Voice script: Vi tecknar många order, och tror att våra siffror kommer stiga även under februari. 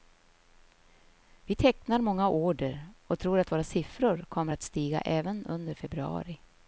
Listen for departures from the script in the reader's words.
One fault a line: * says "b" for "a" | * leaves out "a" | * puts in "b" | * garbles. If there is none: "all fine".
* puts in "att"